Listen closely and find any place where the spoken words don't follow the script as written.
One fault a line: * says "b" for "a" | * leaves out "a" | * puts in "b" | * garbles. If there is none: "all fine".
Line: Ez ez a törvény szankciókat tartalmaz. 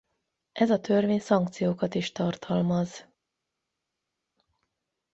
* leaves out "ez"
* puts in "is"